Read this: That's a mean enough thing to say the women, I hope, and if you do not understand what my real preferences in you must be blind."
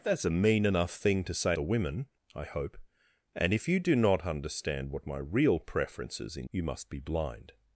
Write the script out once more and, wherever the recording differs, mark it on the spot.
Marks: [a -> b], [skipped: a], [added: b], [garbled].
That's a mean enough thing to say the women, I hope, and if you do not understand what my real preferences in you must be blind."